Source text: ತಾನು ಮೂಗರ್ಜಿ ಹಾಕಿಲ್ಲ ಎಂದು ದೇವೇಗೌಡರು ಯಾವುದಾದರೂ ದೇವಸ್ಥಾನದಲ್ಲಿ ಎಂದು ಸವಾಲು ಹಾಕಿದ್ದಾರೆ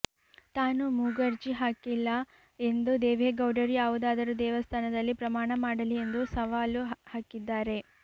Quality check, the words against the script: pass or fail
fail